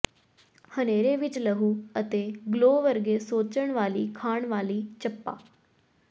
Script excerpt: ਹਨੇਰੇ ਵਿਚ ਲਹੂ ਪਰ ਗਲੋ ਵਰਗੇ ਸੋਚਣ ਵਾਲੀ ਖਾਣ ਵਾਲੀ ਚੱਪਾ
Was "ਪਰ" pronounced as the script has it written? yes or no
no